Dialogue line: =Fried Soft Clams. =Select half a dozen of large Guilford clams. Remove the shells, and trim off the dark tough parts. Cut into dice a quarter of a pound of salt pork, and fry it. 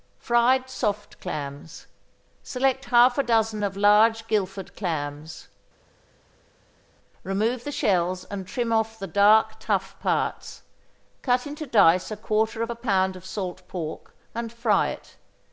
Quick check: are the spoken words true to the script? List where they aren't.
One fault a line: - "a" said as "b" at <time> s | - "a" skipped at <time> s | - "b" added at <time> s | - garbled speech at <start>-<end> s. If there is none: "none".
none